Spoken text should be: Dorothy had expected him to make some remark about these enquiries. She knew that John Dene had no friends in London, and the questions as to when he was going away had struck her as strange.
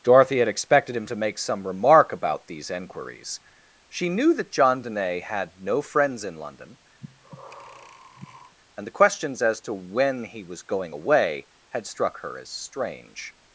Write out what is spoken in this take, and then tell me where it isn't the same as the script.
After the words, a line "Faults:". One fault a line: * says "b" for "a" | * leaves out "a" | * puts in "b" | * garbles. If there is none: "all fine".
Dorothy had expected him to make some remark about these enquiries. She knew that John Dene had no friends in London, and the questions as to when he was going away had struck her as strange.
Faults:
all fine